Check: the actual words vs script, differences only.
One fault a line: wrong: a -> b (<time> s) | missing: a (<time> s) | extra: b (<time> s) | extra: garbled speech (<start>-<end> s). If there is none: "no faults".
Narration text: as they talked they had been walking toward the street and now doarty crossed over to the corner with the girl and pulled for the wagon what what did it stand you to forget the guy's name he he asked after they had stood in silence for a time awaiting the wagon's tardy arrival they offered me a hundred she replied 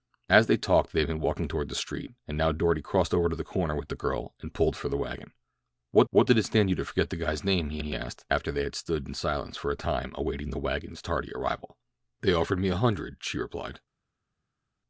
no faults